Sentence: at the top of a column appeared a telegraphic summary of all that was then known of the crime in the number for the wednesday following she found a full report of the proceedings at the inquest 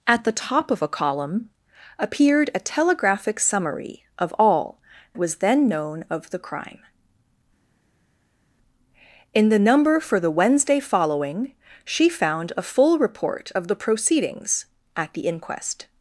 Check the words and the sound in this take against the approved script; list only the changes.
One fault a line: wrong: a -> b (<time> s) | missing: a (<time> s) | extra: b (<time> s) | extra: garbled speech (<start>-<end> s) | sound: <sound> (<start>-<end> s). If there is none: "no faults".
missing: that (4.8 s)